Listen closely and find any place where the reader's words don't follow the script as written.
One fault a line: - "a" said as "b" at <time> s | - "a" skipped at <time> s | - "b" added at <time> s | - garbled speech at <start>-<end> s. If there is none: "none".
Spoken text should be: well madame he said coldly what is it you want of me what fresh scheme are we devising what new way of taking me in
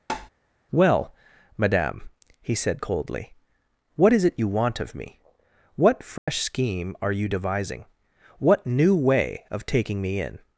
- "we" said as "you" at 7.1 s